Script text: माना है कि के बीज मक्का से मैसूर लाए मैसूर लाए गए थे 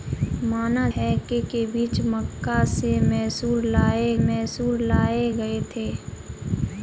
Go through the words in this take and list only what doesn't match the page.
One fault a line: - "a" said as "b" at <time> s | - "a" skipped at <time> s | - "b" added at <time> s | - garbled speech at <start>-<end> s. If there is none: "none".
none